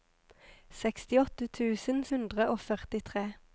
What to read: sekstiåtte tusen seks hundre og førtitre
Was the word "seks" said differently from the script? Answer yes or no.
yes